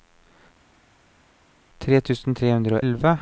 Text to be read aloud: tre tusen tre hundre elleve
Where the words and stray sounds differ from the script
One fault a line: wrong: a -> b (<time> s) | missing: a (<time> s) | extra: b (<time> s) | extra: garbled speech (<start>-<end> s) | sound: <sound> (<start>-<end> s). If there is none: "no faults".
no faults